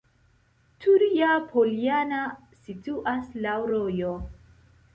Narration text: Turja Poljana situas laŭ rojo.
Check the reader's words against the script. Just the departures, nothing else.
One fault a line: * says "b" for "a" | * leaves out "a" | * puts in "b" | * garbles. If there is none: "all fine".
all fine